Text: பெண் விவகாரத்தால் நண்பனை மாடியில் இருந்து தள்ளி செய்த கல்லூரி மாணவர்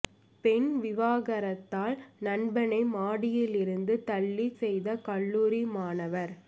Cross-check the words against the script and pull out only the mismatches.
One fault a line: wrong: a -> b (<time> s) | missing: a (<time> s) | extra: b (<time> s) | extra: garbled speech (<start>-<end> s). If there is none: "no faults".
no faults